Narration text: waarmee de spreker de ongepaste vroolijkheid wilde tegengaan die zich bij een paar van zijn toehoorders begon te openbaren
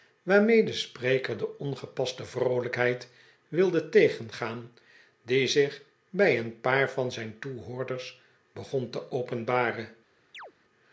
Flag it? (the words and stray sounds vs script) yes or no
yes